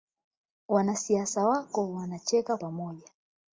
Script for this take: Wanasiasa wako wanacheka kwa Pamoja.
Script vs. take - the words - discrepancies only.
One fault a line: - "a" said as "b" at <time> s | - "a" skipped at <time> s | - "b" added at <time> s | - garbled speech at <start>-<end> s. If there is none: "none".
- "kwa" skipped at 2.6 s